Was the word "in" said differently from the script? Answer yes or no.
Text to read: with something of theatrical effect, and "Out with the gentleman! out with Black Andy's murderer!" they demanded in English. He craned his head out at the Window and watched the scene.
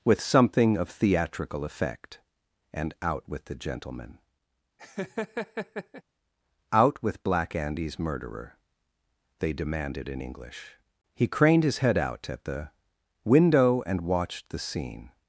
no